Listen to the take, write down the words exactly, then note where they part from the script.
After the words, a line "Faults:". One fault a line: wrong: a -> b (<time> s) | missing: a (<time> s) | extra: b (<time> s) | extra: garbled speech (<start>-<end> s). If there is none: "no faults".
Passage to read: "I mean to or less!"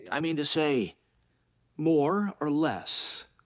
"I mean to say...." "More or less!"
Faults:
extra: say More (0.4 s)